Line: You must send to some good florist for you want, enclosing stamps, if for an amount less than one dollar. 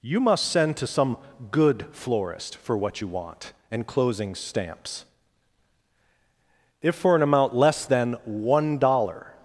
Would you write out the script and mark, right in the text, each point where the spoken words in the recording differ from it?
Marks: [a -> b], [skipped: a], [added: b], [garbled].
You must send to some good florist for [added: what] you want, enclosing stamps, if for an amount less than one dollar.